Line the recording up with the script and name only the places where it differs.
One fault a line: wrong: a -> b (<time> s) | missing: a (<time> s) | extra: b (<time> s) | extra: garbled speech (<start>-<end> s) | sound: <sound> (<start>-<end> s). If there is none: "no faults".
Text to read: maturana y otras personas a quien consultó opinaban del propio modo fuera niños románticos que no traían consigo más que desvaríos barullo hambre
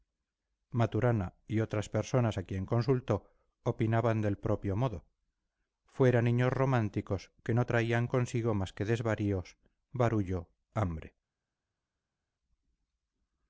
no faults